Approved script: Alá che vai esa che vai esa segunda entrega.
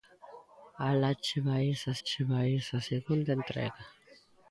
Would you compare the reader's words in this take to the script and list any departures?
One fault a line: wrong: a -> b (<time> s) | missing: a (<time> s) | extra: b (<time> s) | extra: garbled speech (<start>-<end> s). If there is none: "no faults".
no faults